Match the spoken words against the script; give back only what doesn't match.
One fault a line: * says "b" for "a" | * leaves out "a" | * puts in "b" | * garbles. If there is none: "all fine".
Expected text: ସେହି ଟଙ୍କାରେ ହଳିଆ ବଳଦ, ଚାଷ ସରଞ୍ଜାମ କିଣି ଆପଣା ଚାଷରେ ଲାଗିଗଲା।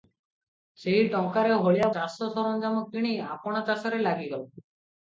* leaves out "ବଳଦ"